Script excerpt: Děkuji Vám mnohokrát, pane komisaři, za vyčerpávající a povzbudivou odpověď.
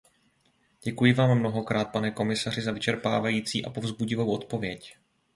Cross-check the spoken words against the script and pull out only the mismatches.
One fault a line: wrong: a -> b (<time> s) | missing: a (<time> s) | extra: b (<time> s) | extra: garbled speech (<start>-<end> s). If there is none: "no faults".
no faults